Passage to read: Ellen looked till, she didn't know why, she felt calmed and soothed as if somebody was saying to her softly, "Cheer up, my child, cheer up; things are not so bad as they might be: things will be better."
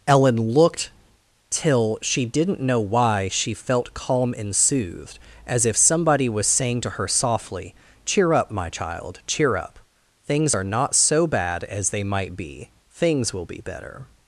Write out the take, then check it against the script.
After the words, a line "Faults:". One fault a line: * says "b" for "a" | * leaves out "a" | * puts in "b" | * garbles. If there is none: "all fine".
Ellen looked till, she didn't know why, she felt calm and soothed as if somebody was saying to her softly, "Cheer up, my child, cheer up; things are not so bad as they might be: things will be better."
Faults:
* says "calm" for "calmed"